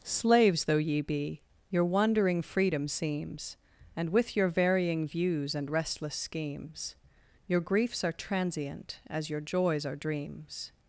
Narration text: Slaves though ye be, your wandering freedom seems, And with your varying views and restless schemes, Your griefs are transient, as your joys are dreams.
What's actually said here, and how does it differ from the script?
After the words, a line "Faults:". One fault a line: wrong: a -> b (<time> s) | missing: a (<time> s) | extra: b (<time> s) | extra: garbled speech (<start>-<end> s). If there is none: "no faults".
Slaves though ye be, your wandering freedom seems, And with your varying views and restless schemes, Your griefs are transient, as your joys are dreams.
Faults:
no faults